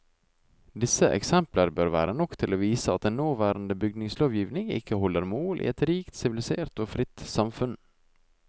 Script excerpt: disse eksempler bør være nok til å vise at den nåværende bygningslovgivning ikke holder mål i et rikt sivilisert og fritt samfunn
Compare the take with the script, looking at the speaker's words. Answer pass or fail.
pass